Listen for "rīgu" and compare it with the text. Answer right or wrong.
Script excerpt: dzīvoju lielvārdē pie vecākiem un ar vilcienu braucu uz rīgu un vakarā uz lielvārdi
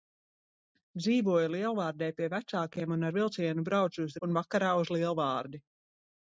wrong